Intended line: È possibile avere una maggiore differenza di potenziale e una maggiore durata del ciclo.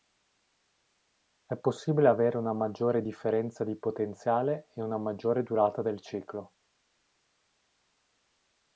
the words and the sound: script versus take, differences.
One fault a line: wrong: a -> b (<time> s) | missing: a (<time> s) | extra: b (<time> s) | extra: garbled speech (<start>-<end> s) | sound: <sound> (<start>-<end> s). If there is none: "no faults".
no faults